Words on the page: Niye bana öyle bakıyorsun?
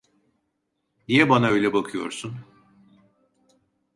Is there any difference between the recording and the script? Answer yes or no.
no